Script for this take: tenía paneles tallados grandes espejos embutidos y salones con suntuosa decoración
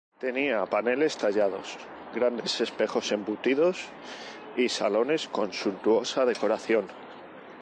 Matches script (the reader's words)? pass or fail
pass